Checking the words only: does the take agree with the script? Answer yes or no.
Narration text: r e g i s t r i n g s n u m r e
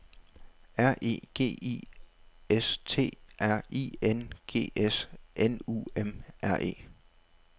yes